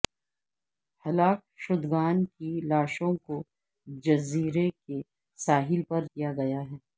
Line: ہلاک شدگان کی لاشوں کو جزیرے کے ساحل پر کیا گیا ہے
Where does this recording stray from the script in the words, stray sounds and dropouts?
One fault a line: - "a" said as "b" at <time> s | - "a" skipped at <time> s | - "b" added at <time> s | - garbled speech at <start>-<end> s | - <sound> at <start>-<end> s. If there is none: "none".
none